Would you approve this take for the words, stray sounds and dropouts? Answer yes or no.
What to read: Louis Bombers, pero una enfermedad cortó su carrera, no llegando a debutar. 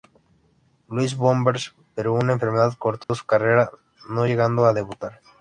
no